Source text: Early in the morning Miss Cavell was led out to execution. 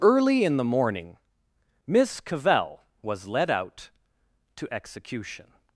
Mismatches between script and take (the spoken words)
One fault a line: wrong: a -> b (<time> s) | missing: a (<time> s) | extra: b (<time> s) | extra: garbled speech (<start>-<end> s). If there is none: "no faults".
no faults